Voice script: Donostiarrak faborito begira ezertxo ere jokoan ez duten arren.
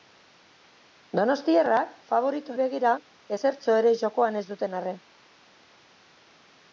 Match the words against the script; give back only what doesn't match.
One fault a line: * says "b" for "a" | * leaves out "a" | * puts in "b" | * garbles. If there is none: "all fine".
all fine